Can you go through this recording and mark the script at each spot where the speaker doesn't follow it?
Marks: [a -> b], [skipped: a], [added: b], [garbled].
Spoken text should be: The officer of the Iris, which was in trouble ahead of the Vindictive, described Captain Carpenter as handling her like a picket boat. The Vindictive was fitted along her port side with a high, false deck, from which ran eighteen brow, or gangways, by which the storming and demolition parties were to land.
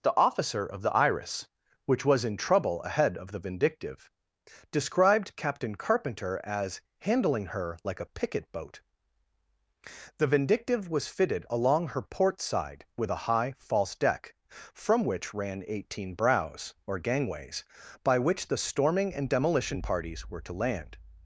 The officer of the Iris, which was in trouble ahead of the Vindictive, described Captain Carpenter as handling her like a picket boat. The Vindictive was fitted along her port side with a high, false deck, from which ran eighteen [brow, -> brows] or gangways, by which the storming and demolition parties were to land.